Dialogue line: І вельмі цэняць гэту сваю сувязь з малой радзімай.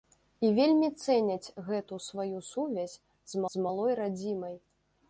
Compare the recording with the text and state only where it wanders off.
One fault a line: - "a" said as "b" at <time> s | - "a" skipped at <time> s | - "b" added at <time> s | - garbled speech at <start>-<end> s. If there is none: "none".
- "з" added at 3.6 s